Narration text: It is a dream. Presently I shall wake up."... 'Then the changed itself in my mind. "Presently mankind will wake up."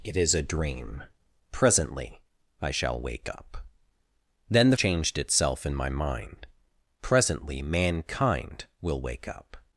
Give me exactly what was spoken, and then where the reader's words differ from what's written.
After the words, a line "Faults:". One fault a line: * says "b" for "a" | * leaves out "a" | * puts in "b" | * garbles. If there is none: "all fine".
It is a dream. Presently I shall wake up."... 'Then the changed itself in my mind. "Presently mankind will wake up."
Faults:
all fine